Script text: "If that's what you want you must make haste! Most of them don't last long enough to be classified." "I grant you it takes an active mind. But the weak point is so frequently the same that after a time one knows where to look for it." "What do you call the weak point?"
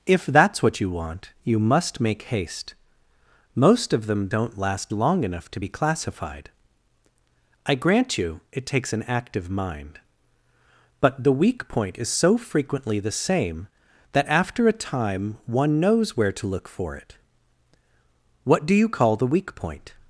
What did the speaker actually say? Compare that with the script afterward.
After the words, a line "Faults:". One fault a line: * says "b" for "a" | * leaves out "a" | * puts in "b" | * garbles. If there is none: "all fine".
"If that's what you want you must make haste! Most of them don't last long enough to be classified." "I grant you it takes an active mind. But the weak point is so frequently the same that after a time one knows where to look for it." "What do you call the weak point?"
Faults:
all fine